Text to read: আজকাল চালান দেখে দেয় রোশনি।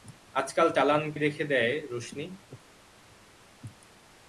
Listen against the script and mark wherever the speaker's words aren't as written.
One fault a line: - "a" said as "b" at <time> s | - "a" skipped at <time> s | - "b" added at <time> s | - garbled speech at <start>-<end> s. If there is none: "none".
none